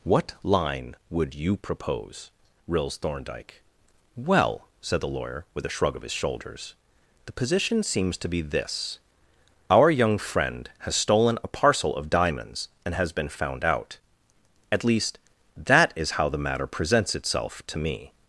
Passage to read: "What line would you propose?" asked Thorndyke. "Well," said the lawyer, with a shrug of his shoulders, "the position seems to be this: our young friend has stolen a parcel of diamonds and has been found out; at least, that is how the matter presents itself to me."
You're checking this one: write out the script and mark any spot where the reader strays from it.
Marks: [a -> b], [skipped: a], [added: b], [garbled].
"What line would you propose?" [asked -> rills] Thorndyke. "Well," said the lawyer, with a shrug of his shoulders, "the position seems to be this: our young friend has stolen a parcel of diamonds and has been found out; at least, that is how the matter presents itself to me."